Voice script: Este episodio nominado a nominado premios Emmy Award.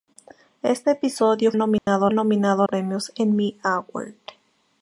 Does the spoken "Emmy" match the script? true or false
true